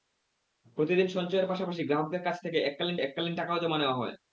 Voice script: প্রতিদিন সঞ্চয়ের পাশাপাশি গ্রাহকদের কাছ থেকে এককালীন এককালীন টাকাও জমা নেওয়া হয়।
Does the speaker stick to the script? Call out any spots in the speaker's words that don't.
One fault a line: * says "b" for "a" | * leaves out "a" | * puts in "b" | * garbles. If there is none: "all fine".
all fine